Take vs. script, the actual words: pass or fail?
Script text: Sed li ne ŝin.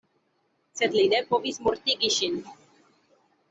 fail